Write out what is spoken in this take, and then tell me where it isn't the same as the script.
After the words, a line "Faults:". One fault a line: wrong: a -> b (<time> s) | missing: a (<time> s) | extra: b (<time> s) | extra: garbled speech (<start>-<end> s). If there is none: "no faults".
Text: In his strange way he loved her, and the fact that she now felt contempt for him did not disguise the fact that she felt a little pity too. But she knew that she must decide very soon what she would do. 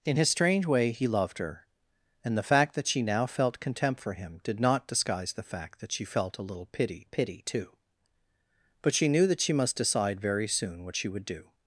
In his strange way he loved her, and the fact that she now felt contempt for him did not disguise the fact that she felt a little pity pity too. But she knew that she must decide very soon what she would do.
Faults:
extra: pity (7.0 s)